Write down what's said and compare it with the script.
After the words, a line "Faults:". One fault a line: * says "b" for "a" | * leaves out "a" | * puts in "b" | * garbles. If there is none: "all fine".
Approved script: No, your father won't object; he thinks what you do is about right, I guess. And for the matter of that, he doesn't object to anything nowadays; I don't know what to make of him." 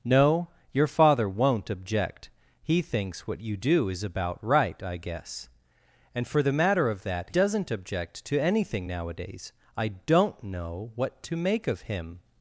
No, your father won't object; he thinks what you do is about right, I guess. And for the matter of that, doesn't object to anything nowadays; I don't know what to make of him."
Faults:
* leaves out "he"